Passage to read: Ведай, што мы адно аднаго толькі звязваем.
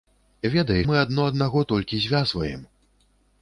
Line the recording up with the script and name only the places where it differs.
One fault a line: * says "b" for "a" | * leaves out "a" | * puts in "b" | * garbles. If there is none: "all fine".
* leaves out "што"